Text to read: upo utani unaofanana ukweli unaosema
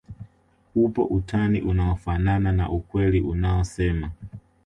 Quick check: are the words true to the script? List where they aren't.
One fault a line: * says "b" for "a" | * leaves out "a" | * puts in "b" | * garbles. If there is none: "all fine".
* puts in "na"